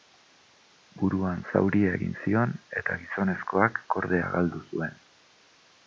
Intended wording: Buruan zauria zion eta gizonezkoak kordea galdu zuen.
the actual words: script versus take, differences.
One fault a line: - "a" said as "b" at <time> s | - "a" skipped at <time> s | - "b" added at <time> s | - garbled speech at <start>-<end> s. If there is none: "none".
- "egin" added at 2.0 s